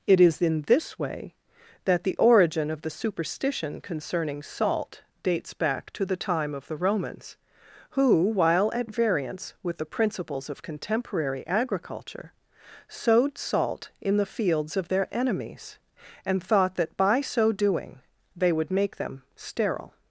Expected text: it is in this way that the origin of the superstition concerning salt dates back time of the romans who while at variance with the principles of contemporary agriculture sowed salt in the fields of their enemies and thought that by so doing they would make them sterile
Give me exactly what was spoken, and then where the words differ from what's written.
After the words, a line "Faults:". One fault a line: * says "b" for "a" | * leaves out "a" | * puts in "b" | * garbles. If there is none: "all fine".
it is in this way that the origin of the superstition concerning salt dates back to the time of the romans who while at variance with the principles of contemporary agriculture sowed salt in the fields of their enemies and thought that by so doing they would make them sterile
Faults:
* puts in "to the"